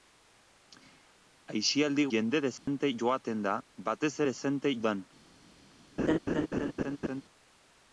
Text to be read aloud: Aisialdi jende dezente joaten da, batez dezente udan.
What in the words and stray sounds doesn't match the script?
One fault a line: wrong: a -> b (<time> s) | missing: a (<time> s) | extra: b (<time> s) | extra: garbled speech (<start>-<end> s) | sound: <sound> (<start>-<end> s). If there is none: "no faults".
sound: dropout (2.6-2.7 s)
sound: laugh (6.0-7.2 s)